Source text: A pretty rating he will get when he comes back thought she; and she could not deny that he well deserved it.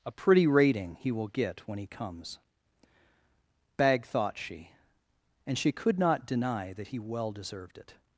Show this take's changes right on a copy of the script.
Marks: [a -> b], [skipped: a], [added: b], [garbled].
A pretty rating he will get when he comes [back -> bag] thought she; and she could not deny that he well deserved it.